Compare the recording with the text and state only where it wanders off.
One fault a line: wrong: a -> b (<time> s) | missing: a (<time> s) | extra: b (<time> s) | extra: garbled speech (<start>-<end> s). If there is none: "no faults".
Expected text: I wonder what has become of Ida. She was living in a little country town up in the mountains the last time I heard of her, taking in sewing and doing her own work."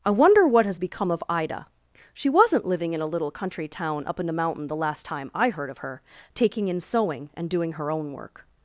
wrong: was -> wasn't (2.3 s)
wrong: mountains -> mountain (4.3 s)